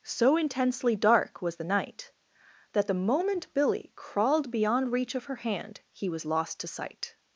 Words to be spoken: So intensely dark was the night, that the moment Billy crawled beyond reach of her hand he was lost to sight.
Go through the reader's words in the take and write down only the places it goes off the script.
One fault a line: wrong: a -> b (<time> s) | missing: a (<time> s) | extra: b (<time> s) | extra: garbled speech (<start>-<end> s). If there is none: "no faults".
no faults